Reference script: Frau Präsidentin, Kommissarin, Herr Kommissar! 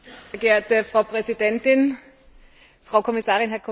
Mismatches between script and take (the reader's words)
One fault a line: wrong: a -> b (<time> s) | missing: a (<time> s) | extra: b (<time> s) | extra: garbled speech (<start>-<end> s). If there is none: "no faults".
extra: Frau (2.8 s)